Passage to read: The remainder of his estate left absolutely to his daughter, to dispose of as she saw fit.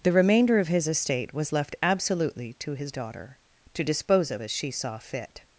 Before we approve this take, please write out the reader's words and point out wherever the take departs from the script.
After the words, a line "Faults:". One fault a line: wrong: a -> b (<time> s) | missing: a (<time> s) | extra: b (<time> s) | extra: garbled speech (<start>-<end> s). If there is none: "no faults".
The remainder of his estate was left absolutely to his daughter, to dispose of as she saw fit.
Faults:
extra: was (1.3 s)